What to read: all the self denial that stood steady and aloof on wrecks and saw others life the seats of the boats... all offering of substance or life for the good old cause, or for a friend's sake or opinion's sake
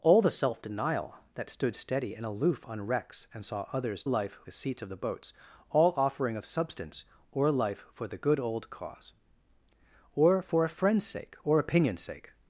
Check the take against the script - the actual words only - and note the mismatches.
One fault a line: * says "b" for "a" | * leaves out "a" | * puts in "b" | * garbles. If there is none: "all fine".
all fine